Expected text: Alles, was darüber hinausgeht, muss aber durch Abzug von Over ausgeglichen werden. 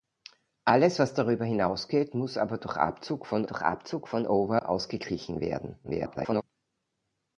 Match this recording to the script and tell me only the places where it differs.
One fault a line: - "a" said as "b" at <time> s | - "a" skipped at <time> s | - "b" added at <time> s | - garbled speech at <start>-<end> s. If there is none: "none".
- "durch Abzug von" added at 3.4 s
- garbled speech at 5.8-6.4 s